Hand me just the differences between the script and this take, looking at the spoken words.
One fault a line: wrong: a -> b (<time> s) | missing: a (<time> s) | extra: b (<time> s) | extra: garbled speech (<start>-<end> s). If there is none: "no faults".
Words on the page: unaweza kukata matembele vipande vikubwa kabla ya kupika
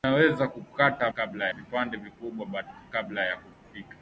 wrong: matembele -> kabla (1.1 s)